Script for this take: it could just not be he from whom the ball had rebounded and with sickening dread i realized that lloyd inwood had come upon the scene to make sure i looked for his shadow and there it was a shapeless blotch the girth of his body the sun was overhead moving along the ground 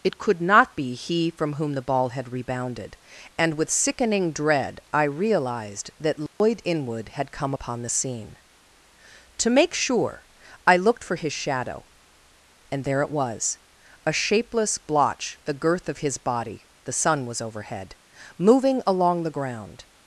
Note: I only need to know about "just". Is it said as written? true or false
false